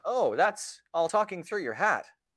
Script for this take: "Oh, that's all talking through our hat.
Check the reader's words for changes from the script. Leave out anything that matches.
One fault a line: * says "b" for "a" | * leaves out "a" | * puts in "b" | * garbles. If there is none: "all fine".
* says "your" for "our"